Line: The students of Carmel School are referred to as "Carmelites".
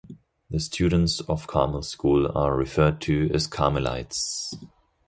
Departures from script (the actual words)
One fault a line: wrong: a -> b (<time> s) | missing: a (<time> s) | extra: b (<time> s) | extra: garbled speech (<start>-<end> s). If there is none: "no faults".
no faults